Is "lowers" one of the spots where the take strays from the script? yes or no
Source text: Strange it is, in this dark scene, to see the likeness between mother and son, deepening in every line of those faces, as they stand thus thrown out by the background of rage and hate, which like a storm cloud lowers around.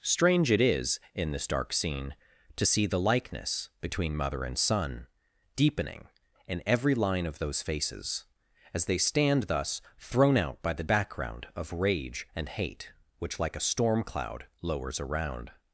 no